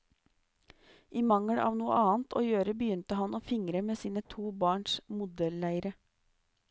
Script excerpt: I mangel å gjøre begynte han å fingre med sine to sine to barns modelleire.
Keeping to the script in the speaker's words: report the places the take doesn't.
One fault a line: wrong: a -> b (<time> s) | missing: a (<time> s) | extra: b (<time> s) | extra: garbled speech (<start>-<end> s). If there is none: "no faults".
extra: av noe annet (1.6 s)
missing: sine to (4.5 s)